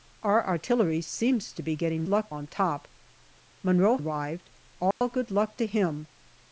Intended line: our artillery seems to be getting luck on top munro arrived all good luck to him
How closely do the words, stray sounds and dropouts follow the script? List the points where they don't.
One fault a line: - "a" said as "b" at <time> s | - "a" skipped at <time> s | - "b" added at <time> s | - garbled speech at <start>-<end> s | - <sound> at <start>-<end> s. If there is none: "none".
- dropout at 4.9-5.0 s